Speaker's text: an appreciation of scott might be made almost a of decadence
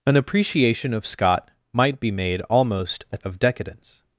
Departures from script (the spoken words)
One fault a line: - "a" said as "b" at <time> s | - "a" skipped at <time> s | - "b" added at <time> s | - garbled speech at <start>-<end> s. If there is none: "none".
none